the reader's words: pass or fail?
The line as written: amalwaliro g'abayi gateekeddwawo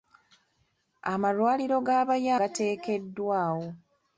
pass